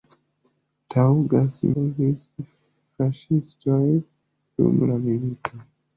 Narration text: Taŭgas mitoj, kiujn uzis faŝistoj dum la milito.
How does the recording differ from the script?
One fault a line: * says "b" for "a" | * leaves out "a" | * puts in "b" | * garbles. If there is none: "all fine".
* leaves out "mitoj kiujn"